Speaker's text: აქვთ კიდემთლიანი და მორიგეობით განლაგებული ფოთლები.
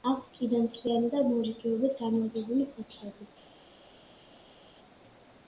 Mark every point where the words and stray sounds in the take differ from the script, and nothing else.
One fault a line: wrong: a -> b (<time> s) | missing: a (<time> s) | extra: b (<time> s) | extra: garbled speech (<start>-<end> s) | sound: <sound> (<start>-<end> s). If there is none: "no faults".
no faults